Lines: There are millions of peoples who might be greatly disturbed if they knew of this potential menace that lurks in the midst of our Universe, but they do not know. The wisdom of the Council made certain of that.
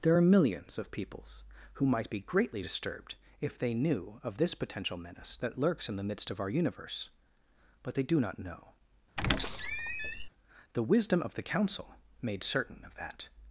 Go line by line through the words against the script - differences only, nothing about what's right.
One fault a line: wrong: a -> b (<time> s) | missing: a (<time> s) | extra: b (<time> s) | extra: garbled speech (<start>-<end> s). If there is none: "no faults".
no faults